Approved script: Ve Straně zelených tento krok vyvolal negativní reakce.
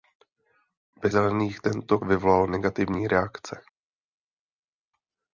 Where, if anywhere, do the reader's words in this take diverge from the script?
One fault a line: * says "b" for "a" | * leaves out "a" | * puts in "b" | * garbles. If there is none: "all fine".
* leaves out "Straně"
* leaves out "krok"